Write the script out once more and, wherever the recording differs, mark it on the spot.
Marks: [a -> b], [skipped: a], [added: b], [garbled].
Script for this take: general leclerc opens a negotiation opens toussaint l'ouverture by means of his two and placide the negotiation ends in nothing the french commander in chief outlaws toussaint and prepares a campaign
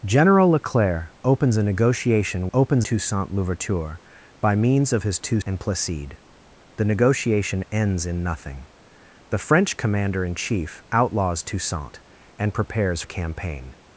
general leclerc opens a negotiation opens toussaint l'ouverture by means of his two and placide the negotiation ends in nothing the french commander in chief outlaws toussaint and prepares a campaign